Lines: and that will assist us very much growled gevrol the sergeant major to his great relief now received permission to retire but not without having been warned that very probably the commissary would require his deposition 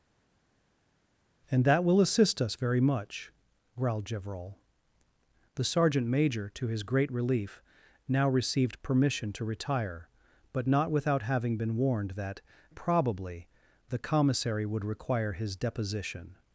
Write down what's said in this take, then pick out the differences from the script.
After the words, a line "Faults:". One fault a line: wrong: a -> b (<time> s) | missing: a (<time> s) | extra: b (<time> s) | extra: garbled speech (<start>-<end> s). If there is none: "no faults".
and that will assist us very much growled gevrol the sergeant major to his great relief now received permission to retire but not without having been warned that probably the commissary would require his deposition
Faults:
missing: very (12.4 s)